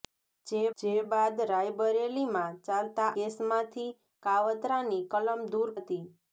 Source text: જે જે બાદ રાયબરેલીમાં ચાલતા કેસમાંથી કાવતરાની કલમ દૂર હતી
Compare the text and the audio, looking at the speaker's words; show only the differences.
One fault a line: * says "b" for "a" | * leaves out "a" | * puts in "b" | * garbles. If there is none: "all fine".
all fine